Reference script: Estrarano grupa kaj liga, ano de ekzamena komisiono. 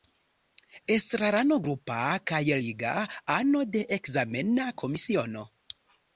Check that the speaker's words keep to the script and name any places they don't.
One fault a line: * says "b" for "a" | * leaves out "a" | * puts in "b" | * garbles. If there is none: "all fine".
all fine